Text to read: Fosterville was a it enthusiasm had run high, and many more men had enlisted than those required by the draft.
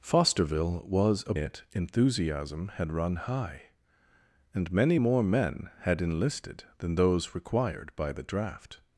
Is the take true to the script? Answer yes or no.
yes